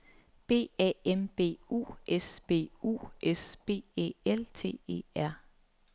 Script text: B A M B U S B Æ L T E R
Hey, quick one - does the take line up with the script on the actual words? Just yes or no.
no